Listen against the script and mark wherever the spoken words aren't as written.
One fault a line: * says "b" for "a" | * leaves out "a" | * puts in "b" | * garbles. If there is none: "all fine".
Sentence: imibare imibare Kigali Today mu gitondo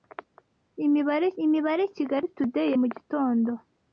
all fine